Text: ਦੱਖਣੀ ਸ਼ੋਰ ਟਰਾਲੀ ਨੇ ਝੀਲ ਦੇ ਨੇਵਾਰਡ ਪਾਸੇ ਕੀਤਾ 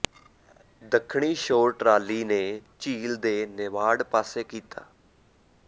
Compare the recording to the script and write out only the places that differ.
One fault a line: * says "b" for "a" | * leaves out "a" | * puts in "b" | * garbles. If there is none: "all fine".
all fine